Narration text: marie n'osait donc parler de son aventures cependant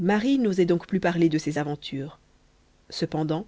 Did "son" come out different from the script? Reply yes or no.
yes